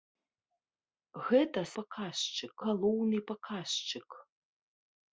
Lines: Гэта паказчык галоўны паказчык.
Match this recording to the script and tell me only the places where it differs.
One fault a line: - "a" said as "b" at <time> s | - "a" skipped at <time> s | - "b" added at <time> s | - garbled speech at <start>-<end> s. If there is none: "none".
none